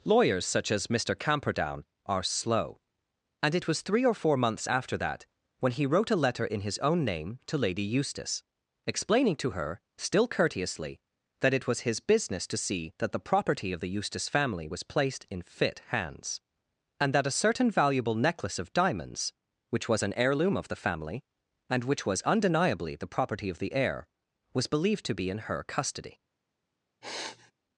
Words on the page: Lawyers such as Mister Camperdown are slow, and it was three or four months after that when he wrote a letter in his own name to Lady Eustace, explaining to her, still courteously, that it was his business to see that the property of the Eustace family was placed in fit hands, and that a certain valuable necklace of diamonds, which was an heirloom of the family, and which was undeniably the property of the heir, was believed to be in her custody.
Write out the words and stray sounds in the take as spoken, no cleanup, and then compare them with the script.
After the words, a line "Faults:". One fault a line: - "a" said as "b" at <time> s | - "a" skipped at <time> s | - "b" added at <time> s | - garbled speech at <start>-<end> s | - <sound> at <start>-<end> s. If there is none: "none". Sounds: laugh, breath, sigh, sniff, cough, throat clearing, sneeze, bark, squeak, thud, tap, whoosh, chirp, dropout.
Lawyers such as Mister Camperdown are slow, and it was three or four months after that when he wrote a letter in his own name to Lady Eustace, explaining to her, still courteously, that it was his business to see that the property of the Eustace family was placed in fit hands, and that a certain valuable necklace of diamonds, which was an heirloom of the family, and which was undeniably the property of the heir, was believed to be in her custody.
Faults:
- sniff at 27.0-27.5 s